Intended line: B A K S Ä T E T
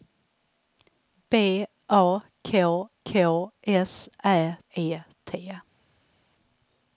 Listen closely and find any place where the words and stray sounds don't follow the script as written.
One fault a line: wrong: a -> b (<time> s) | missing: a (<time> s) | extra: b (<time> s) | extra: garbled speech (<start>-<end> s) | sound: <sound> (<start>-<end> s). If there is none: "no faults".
extra: K (3.0 s)
missing: T (4.6 s)